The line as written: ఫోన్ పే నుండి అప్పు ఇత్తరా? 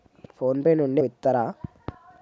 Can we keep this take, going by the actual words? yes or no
no